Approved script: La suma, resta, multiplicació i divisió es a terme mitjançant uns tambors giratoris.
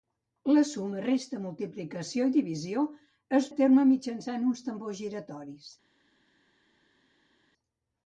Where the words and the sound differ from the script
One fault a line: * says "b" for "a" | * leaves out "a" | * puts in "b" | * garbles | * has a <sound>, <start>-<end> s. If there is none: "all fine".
all fine